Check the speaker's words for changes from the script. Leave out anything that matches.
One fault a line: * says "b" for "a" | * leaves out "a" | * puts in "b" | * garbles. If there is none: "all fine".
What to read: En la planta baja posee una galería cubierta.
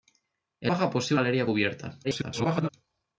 * leaves out "la planta"
* leaves out "una"
* garbles